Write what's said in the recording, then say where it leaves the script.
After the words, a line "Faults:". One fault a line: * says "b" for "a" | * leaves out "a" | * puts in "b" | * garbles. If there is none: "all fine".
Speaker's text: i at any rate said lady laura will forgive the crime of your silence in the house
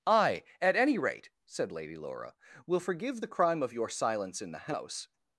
i at any rate said lady laura will forgive the crime of your silence in the house
Faults:
all fine